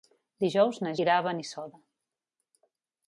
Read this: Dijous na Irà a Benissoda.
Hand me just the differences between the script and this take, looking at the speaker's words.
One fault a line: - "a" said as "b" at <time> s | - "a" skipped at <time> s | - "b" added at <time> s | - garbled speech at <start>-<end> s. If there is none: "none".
none